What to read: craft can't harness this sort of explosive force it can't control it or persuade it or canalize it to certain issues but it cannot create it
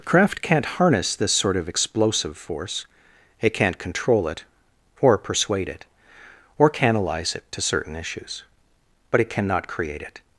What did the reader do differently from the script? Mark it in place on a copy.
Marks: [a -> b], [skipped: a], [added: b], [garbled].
craft can't harness this sort of explosive force it can't control it or persuade it or canalize it to certain issues but it cannot create it